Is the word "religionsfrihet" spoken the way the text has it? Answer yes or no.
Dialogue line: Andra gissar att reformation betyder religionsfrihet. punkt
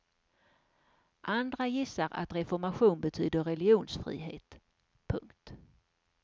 yes